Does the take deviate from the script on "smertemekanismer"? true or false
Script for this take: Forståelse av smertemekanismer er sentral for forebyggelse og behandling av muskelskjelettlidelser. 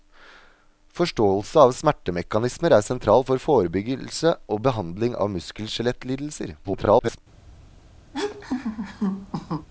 false